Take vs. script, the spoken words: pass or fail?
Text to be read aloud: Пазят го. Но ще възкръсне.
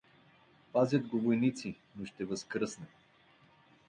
fail